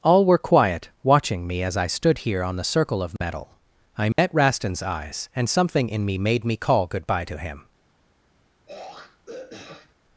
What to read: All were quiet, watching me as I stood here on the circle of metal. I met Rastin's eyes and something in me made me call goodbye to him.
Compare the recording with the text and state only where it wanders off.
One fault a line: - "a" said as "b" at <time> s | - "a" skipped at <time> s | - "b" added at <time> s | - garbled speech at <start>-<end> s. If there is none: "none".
none